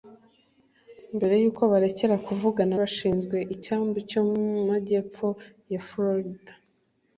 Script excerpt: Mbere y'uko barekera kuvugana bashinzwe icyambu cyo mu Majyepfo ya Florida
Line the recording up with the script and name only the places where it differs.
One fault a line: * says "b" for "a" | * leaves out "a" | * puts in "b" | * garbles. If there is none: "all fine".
all fine